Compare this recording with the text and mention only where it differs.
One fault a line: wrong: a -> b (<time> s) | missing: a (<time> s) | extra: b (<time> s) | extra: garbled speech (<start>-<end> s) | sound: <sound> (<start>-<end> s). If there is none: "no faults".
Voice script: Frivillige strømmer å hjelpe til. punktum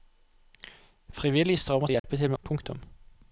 sound: dropout (2.0-2.0 s)